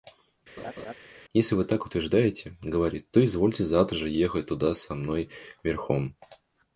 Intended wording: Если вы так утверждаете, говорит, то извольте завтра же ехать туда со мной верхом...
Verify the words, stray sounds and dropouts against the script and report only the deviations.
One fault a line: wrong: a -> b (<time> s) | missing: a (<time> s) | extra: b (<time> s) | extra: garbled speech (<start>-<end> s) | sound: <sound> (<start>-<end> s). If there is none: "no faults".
sound: laugh (0.6-0.9 s)